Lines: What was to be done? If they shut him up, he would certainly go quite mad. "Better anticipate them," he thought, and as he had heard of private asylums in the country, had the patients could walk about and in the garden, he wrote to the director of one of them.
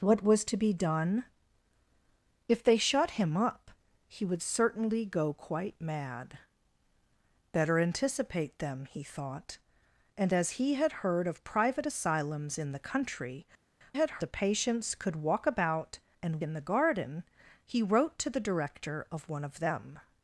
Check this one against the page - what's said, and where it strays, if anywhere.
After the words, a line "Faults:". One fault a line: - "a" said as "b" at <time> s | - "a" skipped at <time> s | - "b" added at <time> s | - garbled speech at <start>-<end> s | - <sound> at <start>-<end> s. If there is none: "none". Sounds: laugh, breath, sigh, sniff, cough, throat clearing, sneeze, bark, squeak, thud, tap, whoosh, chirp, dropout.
What was to be done? If they shut him up, he would certainly go quite mad. "Better anticipate them," he thought, and as he had heard of private asylums in the country, had the patients could walk about and in the garden, he wrote to the director of one of them.
Faults:
none